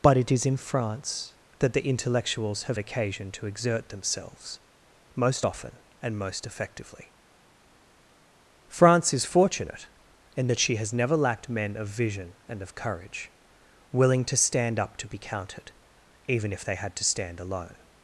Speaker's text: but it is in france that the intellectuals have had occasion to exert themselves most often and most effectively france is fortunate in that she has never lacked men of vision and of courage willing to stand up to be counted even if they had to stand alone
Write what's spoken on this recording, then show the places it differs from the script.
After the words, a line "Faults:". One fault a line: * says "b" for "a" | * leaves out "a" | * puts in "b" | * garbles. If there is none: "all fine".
but it is in france that the intellectuals have occasion to exert themselves most often and most effectively france is fortunate in that she has never lacked men of vision and of courage willing to stand up to be counted even if they had to stand alone
Faults:
* leaves out "had"